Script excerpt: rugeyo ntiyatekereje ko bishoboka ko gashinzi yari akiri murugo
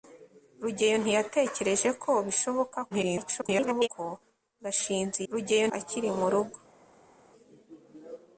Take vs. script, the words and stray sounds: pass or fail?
fail